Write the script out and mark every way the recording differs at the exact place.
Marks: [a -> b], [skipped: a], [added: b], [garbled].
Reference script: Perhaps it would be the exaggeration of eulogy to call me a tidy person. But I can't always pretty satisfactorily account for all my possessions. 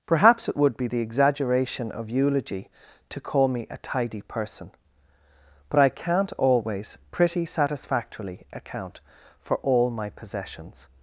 Perhaps it would be the exaggeration of eulogy to call me a tidy person. But I can't always pretty satisfactorily account for all my possessions.